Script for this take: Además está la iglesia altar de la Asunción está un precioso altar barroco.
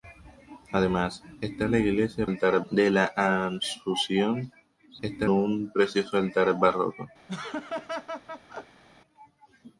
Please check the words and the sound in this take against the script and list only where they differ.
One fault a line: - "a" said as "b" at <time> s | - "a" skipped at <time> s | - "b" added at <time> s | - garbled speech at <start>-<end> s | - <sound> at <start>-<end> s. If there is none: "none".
- laugh at 7.3-8.8 s